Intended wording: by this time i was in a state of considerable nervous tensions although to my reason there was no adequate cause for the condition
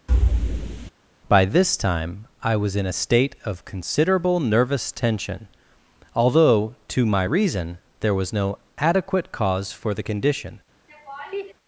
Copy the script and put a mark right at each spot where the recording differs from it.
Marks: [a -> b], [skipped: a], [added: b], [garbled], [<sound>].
[thud] by this time i was in a state of considerable nervous [tensions -> tension] although to my reason there was no adequate cause for the condition [laugh]